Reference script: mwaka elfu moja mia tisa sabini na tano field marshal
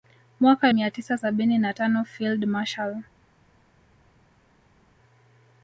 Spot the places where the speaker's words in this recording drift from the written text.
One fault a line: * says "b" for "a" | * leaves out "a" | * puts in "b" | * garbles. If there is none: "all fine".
* leaves out "elfu moja"